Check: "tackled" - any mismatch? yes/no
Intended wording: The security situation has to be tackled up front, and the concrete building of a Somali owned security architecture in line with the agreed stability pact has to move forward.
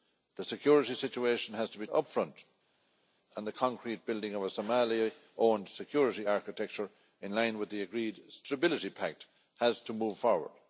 yes